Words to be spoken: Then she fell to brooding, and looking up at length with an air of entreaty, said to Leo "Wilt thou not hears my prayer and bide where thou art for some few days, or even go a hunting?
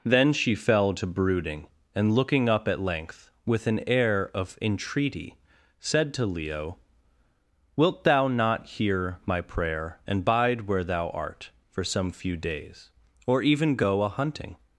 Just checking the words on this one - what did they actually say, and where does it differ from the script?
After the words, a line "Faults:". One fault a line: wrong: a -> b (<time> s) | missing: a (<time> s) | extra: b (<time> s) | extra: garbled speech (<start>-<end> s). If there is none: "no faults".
Then she fell to brooding, and looking up at length with an air of entreaty, said to Leo "Wilt thou not hear my prayer and bide where thou art for some few days, or even go a hunting?
Faults:
wrong: hears -> hear (8.7 s)